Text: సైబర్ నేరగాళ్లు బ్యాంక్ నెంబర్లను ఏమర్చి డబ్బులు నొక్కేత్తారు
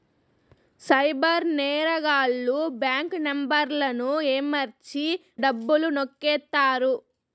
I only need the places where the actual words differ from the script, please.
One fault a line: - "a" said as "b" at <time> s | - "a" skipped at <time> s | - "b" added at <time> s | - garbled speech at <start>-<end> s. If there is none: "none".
none